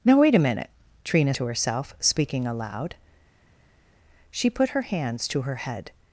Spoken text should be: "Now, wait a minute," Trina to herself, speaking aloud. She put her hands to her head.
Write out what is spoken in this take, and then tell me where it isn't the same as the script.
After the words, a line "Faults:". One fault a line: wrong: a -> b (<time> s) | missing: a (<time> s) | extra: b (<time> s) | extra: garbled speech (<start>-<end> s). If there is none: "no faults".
"Now, wait a minute," Trina to herself, speaking aloud. She put her hands to her head.
Faults:
no faults